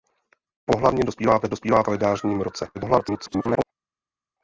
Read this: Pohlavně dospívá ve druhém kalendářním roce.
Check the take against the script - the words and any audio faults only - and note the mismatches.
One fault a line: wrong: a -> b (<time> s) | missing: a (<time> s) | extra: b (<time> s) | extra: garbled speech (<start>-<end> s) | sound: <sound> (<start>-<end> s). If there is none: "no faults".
wrong: druhém -> dospívá (1.5 s)
extra: garbled speech (2.7-3.6 s)